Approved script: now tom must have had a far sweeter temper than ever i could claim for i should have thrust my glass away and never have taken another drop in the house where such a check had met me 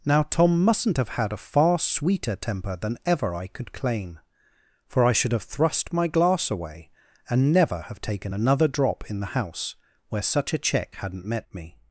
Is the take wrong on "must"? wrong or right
wrong